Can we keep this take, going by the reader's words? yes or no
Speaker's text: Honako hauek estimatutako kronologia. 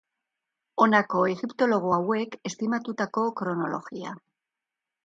no